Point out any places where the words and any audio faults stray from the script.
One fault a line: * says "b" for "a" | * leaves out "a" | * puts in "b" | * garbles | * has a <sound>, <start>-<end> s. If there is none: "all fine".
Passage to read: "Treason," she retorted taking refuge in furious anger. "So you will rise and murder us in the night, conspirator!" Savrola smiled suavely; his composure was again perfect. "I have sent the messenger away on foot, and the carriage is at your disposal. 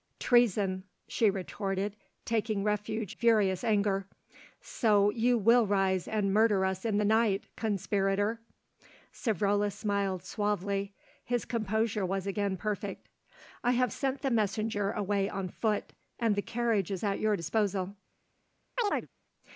* leaves out "in"
* has a chirp, 18.8-19.1 s